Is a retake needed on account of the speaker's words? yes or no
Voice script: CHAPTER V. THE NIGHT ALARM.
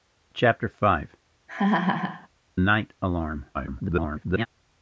yes